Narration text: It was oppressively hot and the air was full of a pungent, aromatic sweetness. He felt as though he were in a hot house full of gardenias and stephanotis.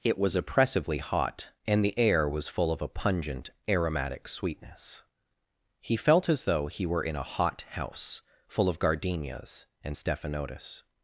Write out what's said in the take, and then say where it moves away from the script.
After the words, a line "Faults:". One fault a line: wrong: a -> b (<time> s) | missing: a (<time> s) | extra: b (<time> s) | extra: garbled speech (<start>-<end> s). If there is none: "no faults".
It was oppressively hot and the air was full of a pungent, aromatic sweetness. He felt as though he were in a hot house full of gardenias and stephanotis.
Faults:
no faults